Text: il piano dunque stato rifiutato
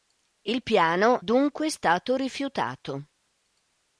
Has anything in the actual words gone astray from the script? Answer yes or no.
no